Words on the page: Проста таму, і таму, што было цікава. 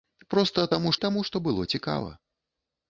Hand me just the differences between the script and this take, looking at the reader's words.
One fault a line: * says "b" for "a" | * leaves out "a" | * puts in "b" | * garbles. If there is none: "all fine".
all fine